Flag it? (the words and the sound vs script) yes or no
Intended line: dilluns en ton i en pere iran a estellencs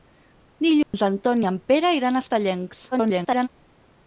yes